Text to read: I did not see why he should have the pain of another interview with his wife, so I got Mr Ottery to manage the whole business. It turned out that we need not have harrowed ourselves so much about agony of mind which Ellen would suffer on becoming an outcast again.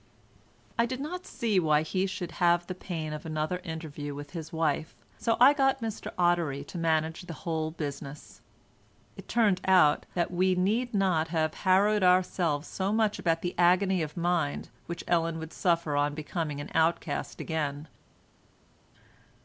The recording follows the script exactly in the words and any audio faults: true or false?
false